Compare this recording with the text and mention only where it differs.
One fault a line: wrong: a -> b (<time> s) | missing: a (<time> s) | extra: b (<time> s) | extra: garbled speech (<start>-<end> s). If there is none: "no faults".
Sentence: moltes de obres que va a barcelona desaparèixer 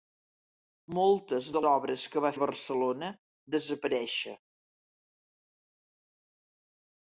no faults